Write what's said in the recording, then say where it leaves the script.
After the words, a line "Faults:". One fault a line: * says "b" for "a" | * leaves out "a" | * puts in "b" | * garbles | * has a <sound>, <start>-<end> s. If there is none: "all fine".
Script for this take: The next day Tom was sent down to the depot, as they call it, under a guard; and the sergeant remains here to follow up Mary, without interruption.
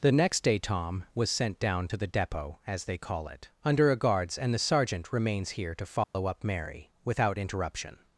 The next day Tom was sent down to the depot, as they call it, under a guards; and the sergeant remains here to follow up Mary, without interruption.
Faults:
* says "guards" for "guard"
* has a dropout, 6.0-6.1 s